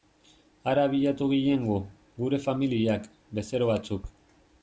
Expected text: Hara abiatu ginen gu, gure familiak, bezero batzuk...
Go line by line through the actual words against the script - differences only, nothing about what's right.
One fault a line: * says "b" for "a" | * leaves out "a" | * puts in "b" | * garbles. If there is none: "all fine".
all fine